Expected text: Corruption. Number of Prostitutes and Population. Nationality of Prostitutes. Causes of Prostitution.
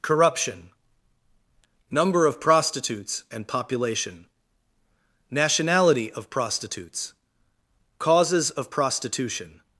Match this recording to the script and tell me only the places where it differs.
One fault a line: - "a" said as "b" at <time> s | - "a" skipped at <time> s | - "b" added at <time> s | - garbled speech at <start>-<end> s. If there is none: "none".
none